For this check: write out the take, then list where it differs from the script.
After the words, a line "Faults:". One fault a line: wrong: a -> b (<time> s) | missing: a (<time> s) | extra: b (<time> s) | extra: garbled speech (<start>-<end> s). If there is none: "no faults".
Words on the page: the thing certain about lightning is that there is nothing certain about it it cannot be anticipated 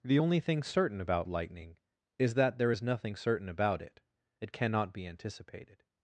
the only thing certain about lightning is that there is nothing certain about it it cannot be anticipated
Faults:
extra: only (0.1 s)